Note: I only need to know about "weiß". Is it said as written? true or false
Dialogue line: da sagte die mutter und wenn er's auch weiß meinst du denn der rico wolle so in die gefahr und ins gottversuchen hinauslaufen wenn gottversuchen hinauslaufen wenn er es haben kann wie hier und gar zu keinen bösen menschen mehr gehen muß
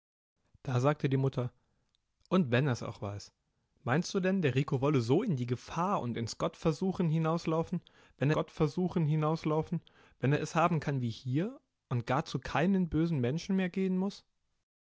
true